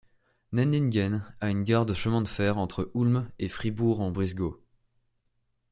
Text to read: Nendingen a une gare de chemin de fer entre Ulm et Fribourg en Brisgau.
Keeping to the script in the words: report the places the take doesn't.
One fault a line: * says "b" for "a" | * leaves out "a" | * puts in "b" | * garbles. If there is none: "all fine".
all fine